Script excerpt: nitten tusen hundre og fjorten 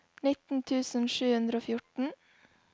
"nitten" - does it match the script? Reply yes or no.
yes